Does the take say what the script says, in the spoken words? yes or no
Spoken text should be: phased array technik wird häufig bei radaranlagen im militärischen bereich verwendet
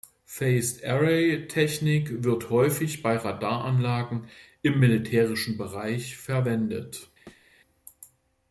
yes